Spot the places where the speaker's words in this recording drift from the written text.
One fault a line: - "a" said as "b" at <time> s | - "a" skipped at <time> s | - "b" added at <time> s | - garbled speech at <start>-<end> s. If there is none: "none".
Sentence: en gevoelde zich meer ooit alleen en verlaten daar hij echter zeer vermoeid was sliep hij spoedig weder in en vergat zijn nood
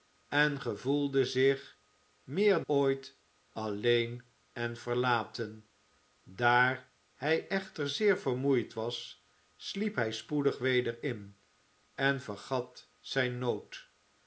none